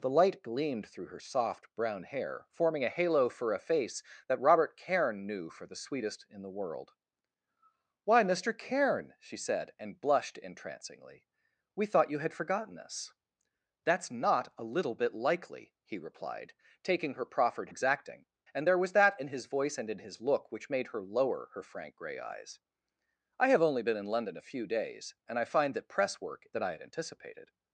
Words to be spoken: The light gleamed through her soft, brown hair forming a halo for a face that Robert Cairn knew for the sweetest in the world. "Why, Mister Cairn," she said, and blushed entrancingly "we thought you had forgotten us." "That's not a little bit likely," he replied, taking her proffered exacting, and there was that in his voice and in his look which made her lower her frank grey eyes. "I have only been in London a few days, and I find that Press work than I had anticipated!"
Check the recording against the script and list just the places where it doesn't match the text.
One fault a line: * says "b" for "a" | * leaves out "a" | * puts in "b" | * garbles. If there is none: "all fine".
all fine